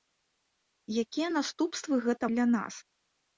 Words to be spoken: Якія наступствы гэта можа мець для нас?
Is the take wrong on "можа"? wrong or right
wrong